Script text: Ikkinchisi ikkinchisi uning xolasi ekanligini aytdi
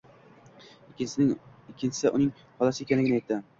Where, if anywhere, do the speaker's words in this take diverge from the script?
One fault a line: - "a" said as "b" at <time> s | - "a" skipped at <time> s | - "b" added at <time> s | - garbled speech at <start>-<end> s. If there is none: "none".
- "ikkinchisi" skipped at 2.1 s